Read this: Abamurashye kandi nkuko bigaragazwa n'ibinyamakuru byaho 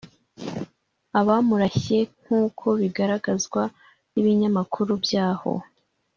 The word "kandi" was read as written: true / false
false